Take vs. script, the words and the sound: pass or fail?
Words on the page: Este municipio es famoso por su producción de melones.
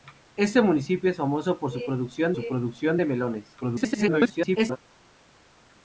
fail